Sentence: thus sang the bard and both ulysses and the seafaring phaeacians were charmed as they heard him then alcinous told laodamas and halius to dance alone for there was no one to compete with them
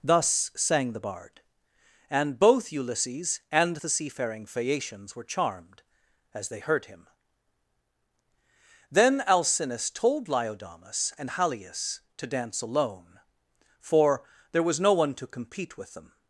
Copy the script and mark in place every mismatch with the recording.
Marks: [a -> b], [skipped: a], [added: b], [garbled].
thus sang the bard and both ulysses and the seafaring phaeacians were charmed as they heard him then alcinous told laodamas and halius to dance alone for there was no one to compete with them